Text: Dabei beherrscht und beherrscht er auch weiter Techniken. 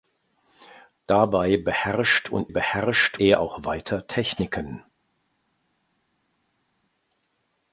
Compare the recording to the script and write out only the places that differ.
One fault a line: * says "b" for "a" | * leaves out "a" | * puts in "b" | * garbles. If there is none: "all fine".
all fine